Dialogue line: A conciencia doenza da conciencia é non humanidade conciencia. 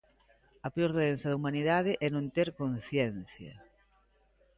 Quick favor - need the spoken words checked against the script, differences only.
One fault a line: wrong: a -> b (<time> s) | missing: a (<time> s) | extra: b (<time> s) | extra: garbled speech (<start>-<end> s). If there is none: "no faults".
wrong: conciencia -> peor (0.8 s)
wrong: conciencia -> humanidade (1.4 s)
wrong: humanidade -> ter (2.3 s)